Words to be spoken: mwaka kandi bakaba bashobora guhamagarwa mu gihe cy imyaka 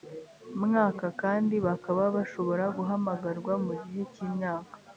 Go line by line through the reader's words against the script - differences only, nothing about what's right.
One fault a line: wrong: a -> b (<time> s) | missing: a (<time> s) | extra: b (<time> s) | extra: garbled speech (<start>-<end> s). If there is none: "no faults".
no faults